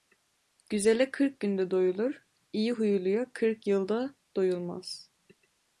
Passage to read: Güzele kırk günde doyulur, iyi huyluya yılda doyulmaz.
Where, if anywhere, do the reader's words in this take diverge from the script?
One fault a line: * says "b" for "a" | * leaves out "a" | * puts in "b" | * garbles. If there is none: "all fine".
* puts in "kırk"